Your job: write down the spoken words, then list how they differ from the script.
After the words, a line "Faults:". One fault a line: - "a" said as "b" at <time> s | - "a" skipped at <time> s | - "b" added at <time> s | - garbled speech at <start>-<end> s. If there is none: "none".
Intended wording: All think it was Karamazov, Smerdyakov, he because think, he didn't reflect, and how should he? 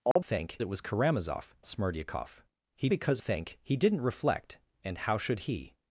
All think it was Karamazov, Smerdyakov, he because think, he didn't reflect, and how should he?
Faults:
none